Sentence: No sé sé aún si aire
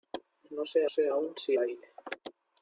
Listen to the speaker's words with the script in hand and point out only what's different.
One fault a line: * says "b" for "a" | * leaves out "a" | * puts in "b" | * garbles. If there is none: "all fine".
all fine